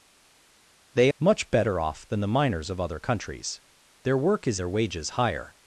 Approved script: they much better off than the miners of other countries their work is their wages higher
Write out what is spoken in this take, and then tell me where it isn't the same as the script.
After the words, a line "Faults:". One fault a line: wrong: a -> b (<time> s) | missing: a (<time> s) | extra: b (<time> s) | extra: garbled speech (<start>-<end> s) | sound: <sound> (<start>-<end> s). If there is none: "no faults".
they much better off than the miners of other countries their work is their wages higher
Faults:
no faults